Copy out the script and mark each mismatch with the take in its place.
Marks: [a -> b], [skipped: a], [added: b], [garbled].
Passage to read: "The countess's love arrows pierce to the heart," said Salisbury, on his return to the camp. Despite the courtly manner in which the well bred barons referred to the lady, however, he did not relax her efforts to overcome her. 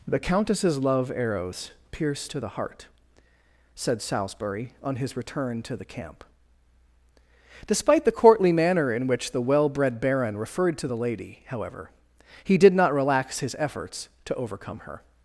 "The countess's love arrows pierce to the heart," said Salisbury, on his return to the camp. Despite the courtly manner in which the well bred [barons -> baron] referred to the lady, however, he did not relax [her -> his] efforts to overcome her.